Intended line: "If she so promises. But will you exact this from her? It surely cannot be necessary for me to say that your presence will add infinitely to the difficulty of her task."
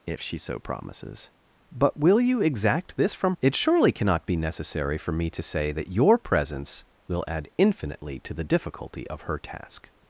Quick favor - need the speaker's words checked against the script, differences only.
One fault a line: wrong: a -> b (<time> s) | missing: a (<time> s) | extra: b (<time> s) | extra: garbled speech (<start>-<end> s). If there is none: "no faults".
missing: her (3.4 s)